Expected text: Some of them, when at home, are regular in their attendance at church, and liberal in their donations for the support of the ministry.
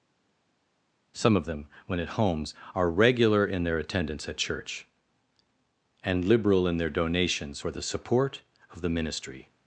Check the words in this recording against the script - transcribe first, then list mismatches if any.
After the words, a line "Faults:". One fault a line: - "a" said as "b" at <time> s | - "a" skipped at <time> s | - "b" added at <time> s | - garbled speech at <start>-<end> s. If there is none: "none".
Some of them, when at homes, are regular in their attendance at church, and liberal in their donations for the support of the ministry.
Faults:
- "home" said as "homes" at 2.1 s